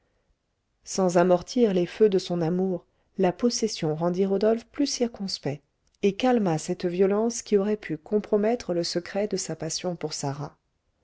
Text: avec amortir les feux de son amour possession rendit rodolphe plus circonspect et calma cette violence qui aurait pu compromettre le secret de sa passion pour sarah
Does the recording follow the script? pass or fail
fail